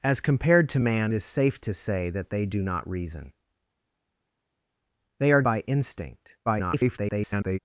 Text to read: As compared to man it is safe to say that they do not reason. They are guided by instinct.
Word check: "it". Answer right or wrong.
wrong